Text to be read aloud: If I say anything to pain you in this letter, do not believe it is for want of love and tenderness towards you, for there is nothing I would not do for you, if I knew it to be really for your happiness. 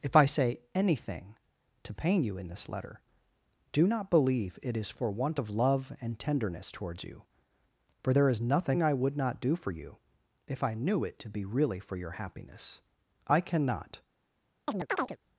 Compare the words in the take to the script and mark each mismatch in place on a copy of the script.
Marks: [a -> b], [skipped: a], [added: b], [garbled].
If I say anything to pain you in this letter, do not believe it is for want of love and tenderness towards you, for there is nothing I would not do for you, if I knew it to be really for your happiness. [added: I cannot]